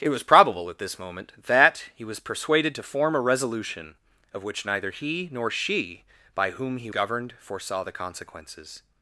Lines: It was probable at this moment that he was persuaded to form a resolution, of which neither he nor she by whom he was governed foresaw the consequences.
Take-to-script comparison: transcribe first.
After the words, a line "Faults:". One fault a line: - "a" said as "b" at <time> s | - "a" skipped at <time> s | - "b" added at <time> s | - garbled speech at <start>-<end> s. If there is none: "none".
It was probable at this moment that he was persuaded to form a resolution, of which neither he nor she by whom he governed foresaw the consequences.
Faults:
- "was" skipped at 6.9 s